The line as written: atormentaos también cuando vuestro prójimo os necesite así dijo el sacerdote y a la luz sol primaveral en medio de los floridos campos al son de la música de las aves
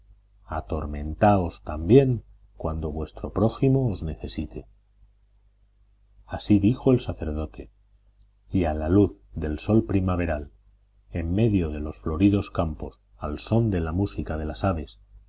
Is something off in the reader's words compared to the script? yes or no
yes